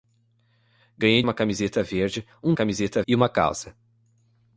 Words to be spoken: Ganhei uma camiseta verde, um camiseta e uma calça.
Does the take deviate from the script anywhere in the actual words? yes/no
no